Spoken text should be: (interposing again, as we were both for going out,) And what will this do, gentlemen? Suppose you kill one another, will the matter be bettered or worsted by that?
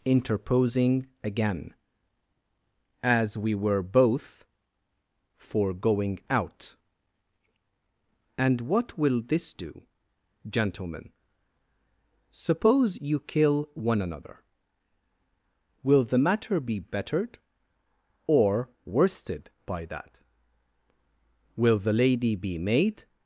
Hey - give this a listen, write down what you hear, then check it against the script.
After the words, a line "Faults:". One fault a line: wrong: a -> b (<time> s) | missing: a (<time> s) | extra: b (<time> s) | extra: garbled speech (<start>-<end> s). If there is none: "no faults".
(interposing again, as we were both for going out,) And what will this do, gentlemen? Suppose you kill one another, will the matter be bettered or worsted by that? Will the lady be made
Faults:
extra: Will the lady be made (21.6 s)